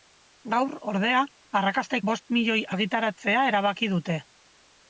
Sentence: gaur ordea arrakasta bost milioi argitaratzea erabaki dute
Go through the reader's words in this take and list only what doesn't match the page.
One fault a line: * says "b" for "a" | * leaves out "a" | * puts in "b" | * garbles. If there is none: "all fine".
all fine